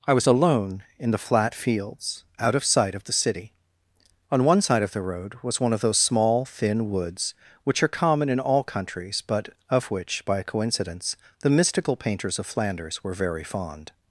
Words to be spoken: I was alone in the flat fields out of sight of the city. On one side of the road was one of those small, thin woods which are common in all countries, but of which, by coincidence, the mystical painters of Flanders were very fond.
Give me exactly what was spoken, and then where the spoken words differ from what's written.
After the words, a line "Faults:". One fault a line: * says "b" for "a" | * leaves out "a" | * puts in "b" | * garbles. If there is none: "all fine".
I was alone in the flat fields out of sight of the city. On one side of the road was one of those small, thin woods which are common in all countries, but of which, by coincidence, the mystical painters of Flanders were very fond.
Faults:
all fine